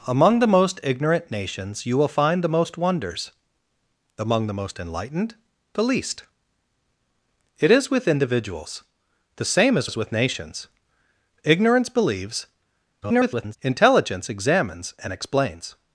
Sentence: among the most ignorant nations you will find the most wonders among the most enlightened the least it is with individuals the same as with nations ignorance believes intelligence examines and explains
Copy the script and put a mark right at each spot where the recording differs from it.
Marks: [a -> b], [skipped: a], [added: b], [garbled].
among the most ignorant nations you will find the most wonders among the most enlightened the least it is with individuals the same as [added: as] with nations ignorance believes [garbled] intelligence examines and explains